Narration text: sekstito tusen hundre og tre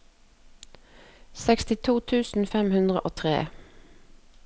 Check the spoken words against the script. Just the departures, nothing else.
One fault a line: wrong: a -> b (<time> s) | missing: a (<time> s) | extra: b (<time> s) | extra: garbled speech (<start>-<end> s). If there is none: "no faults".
extra: fem (2.5 s)